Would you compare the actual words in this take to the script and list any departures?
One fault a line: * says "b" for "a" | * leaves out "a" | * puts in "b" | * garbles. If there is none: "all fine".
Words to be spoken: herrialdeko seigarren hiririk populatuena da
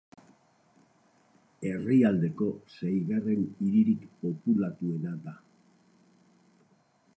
all fine